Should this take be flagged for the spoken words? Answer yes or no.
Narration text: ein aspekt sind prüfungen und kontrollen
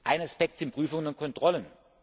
no